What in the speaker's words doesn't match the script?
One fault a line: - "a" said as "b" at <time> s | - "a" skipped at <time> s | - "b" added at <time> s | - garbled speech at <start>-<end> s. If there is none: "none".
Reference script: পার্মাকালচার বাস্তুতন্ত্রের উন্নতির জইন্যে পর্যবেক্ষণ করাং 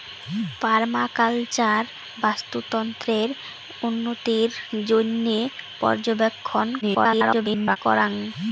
- garbled speech at 6.8-7.8 s